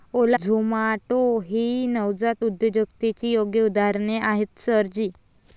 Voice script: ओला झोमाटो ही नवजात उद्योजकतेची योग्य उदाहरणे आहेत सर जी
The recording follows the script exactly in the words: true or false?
true